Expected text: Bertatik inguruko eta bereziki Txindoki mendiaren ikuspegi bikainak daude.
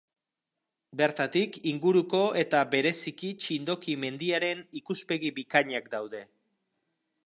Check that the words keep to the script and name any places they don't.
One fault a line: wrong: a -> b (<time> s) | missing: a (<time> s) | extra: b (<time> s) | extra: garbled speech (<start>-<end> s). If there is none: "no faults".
no faults